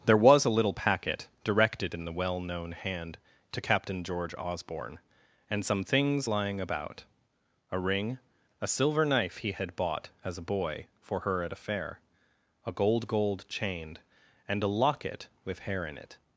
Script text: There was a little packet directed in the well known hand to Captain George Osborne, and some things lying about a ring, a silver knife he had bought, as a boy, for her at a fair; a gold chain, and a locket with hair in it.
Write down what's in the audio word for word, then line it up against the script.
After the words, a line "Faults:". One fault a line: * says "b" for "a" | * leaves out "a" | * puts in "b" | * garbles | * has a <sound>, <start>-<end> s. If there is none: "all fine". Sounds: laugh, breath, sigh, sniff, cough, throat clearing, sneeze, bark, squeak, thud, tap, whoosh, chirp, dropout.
There was a little packet directed in the well known hand to Captain George Osborne, and some things lying about a ring, a silver knife he had bought, as a boy, for her at a fair; a gold gold chain, and a locket with hair in it.
Faults:
* puts in "gold"